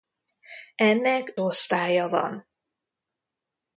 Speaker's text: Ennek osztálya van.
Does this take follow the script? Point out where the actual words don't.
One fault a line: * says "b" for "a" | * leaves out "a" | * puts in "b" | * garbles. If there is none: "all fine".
all fine